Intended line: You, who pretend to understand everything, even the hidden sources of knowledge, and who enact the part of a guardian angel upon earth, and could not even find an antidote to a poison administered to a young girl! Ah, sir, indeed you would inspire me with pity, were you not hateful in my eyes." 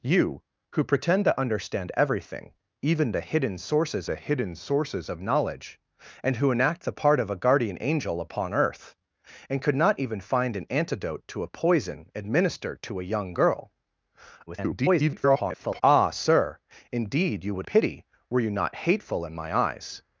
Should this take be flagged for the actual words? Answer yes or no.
yes